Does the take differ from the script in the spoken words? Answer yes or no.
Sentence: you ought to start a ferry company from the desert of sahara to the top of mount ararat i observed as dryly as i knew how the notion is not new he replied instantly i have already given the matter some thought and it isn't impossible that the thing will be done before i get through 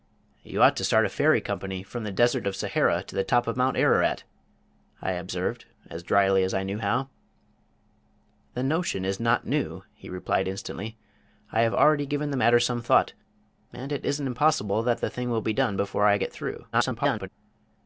yes